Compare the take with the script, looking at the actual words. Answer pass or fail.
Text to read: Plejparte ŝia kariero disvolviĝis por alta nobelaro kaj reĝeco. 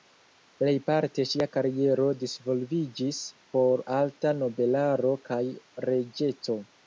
pass